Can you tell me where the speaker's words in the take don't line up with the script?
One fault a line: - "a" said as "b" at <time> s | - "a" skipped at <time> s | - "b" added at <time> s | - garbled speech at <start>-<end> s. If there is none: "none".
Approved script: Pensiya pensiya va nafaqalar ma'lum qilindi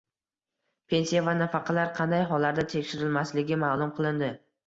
- "pensiya" skipped at 1.2 s
- "qanday hollarda tekshirilmasligi" added at 2.0 s